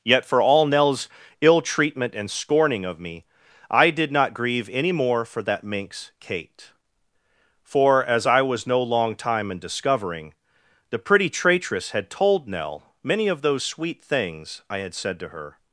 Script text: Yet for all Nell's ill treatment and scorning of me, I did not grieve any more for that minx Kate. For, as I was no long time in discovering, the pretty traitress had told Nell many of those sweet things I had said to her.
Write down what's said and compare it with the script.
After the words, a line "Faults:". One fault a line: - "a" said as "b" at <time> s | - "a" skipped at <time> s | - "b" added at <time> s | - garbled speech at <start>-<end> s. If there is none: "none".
Yet for all Nell's ill treatment and scorning of me, I did not grieve any more for that minx Kate. For, as I was no long time in discovering, the pretty traitress had told Nell many of those sweet things I had said to her.
Faults:
none